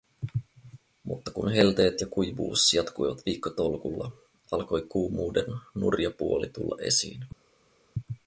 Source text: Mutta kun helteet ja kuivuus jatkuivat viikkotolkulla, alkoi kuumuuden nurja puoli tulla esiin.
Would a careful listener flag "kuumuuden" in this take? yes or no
no